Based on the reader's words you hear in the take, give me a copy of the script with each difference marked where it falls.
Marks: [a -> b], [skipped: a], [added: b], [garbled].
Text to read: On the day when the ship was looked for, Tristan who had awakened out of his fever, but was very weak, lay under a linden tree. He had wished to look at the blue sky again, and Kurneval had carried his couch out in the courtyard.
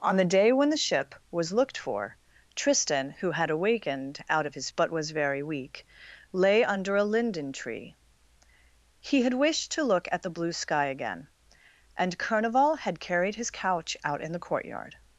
On the day when the ship was looked for, Tristan who had awakened out of his [skipped: fever,] but was very weak, lay under a linden tree. He had wished to look at the blue sky again, and Kurneval had carried his couch out in the courtyard.